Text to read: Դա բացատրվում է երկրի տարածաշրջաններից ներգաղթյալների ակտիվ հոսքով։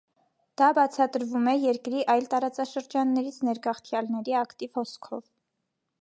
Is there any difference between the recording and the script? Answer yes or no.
yes